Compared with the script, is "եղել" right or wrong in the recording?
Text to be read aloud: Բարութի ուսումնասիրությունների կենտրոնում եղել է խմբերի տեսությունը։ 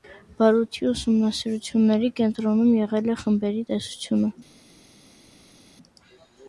right